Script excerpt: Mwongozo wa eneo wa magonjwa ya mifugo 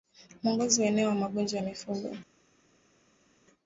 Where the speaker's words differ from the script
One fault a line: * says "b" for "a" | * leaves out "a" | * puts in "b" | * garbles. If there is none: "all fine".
all fine